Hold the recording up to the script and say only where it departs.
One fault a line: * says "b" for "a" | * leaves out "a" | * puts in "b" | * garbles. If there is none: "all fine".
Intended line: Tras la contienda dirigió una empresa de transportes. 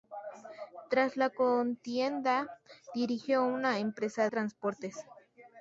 * leaves out "de"